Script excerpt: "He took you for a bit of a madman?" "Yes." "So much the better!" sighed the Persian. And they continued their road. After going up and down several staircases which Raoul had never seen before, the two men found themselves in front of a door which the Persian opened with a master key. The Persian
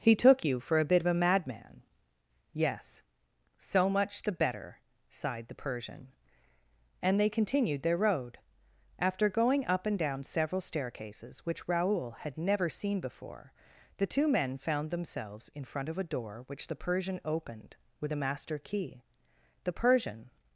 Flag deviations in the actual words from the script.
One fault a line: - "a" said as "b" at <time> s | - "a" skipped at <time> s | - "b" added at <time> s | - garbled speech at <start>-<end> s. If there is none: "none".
none